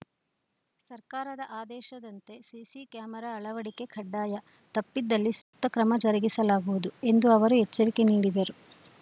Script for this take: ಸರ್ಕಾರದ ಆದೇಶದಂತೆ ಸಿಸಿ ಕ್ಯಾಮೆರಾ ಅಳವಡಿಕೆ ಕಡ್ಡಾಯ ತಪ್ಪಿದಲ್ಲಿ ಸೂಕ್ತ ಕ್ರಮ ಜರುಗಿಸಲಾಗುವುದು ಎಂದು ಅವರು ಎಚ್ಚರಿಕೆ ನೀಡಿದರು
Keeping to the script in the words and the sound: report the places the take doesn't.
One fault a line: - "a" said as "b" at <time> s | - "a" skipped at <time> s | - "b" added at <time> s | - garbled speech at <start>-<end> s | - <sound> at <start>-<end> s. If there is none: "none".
- dropout at 5.4-5.5 s